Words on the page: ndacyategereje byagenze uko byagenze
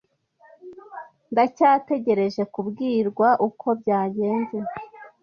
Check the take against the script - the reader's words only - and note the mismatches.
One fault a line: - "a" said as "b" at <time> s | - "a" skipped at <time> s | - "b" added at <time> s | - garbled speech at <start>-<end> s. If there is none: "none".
- "byagenze" said as "kubwirwa" at 2.5 s